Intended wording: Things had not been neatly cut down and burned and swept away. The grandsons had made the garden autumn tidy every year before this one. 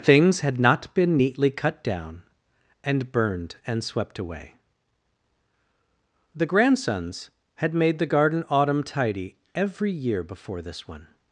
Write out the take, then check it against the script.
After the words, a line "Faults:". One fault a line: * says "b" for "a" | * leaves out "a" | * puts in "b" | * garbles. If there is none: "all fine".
Things had not been neatly cut down and burned and swept away. The grandsons had made the garden autumn tidy every year before this one.
Faults:
all fine